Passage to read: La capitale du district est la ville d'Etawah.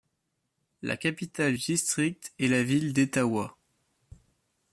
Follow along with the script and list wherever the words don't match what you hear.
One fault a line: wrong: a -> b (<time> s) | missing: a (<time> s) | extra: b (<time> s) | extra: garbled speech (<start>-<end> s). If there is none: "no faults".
no faults